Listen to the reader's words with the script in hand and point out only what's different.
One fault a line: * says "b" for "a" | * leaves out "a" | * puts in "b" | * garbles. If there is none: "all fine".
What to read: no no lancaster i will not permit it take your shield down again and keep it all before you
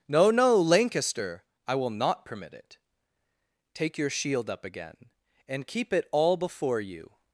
* says "up" for "down"